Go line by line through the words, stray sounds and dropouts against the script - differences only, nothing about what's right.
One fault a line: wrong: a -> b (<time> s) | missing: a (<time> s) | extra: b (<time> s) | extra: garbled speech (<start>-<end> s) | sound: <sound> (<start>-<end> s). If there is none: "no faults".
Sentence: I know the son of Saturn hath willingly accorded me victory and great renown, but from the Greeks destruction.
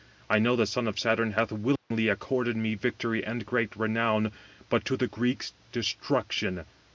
sound: dropout (1.8-1.9 s)
wrong: from -> to (4.8 s)